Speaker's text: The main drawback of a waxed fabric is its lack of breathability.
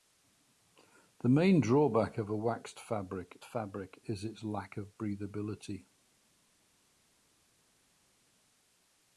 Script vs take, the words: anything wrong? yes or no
yes